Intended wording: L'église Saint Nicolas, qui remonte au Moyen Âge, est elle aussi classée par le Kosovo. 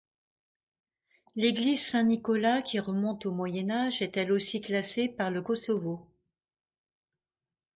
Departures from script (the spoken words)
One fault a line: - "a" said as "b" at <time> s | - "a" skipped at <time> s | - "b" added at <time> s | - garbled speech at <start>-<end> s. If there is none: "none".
none